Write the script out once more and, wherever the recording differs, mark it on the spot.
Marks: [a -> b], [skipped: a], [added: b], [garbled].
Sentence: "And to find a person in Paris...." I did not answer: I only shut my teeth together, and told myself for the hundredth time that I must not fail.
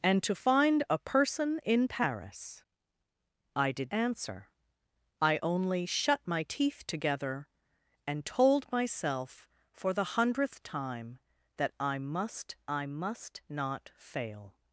"And to find a person in Paris...." I did [skipped: not] answer: I only shut my teeth together, and told myself for the hundredth time that I must [added: I must] not fail.